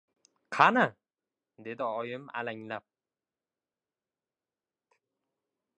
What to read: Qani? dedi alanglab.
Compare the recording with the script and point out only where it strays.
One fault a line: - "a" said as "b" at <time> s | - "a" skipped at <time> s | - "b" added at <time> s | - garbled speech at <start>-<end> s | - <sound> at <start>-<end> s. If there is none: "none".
- "oyim" added at 1.8 s